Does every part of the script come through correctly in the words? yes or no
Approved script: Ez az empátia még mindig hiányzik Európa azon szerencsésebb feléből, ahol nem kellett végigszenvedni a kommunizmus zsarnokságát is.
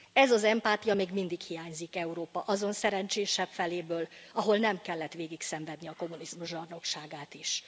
yes